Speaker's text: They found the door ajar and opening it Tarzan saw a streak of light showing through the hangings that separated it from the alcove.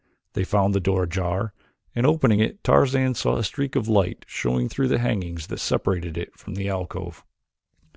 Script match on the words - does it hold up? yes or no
yes